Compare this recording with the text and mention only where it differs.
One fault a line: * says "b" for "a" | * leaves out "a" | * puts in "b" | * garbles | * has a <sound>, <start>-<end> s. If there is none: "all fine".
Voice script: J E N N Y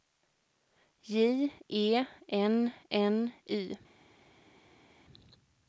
all fine